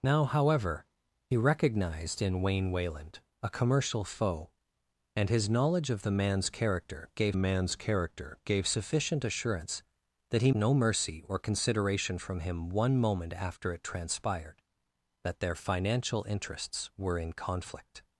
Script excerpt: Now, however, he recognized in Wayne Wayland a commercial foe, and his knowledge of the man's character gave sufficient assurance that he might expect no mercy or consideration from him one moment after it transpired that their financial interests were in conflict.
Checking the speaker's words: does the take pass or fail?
fail